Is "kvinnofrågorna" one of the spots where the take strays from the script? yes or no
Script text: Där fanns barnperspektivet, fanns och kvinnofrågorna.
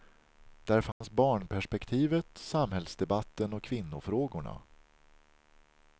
no